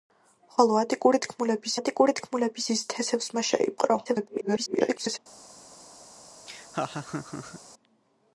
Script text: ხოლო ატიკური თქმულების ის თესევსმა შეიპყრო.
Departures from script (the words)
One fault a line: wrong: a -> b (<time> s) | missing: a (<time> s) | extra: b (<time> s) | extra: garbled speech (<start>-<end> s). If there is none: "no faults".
extra: ატიკური თქმულების (1.8 s)
extra: garbled speech (4.0-5.2 s)